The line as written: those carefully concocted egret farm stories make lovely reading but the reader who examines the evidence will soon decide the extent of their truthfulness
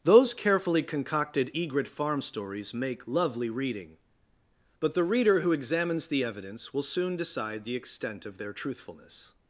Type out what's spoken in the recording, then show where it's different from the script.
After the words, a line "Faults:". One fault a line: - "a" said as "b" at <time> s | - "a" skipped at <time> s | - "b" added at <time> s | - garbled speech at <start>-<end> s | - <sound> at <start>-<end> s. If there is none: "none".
those carefully concocted egret farm stories make lovely reading but the reader who examines the evidence will soon decide the extent of their truthfulness
Faults:
none